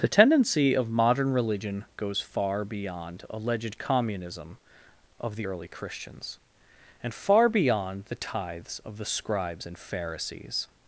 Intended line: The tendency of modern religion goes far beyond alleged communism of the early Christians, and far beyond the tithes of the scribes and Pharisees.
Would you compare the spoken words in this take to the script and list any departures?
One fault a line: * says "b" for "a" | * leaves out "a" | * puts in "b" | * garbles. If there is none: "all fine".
all fine